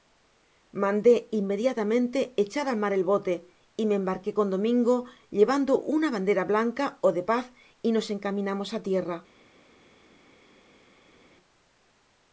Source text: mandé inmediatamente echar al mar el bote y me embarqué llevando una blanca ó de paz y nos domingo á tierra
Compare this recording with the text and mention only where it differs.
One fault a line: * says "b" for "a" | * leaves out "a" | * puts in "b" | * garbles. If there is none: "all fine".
* puts in "con domingo"
* puts in "bandera"
* says "encaminamos" for "domingo"